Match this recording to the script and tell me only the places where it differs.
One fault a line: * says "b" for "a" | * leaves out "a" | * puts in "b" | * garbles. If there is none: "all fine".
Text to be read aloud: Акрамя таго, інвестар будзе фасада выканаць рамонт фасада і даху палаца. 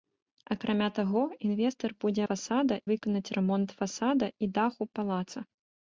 all fine